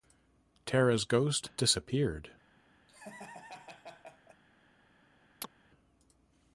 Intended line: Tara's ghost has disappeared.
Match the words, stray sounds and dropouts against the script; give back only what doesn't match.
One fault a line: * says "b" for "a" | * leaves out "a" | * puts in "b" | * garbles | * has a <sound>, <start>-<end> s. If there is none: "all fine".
* leaves out "has"
* has a laugh, 2.9-4.4 s
* has a chirp, 5.4-5.5 s